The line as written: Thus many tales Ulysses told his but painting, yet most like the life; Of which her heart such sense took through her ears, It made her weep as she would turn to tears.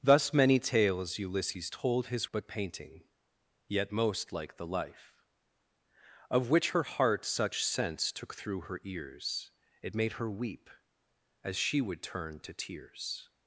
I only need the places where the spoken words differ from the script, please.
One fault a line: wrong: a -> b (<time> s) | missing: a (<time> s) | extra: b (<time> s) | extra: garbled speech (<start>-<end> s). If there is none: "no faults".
no faults